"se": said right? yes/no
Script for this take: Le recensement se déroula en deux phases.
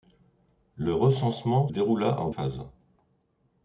no